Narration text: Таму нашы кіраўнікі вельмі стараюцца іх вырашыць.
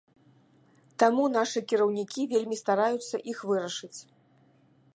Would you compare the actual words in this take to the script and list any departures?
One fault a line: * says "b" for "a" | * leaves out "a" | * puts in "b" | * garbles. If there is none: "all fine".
all fine